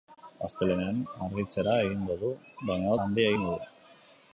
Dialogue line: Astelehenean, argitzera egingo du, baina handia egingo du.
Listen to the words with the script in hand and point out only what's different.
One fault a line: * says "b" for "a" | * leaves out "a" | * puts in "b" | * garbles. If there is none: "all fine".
all fine